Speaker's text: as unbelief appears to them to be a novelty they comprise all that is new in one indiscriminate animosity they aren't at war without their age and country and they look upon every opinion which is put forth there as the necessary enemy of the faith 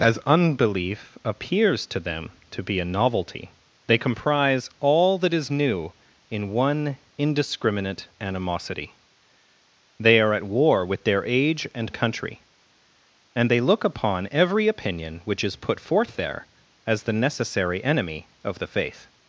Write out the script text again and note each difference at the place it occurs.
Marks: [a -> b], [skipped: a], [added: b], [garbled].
as unbelief appears to them to be a novelty they comprise all that is new in one indiscriminate animosity they [aren't -> are] at war [without -> with] their age and country and they look upon every opinion which is put forth there as the necessary enemy of the faith